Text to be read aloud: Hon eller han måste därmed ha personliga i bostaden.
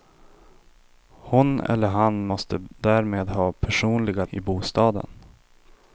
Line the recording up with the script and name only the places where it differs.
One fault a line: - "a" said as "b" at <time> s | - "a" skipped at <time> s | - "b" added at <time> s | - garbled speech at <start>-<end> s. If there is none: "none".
none